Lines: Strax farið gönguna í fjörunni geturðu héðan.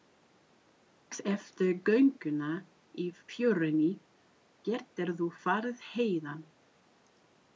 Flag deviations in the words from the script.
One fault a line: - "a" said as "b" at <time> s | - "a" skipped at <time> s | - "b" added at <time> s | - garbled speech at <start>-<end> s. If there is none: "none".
- "farið" said as "eftir" at 1.3 s
- "farið" added at 5.5 s